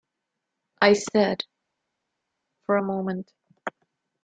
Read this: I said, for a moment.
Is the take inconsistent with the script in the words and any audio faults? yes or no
no